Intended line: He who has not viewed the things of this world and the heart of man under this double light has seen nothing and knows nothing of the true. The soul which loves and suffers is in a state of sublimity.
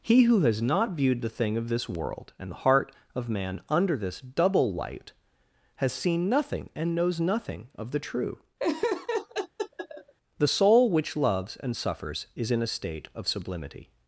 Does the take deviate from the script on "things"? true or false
true